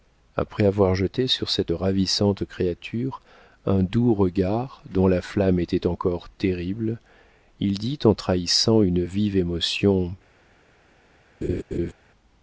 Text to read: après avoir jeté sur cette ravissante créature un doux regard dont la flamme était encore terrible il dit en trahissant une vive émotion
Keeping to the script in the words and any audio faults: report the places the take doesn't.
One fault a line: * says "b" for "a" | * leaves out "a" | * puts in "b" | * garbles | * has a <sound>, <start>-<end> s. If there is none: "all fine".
* has a laugh, 11.4-11.9 s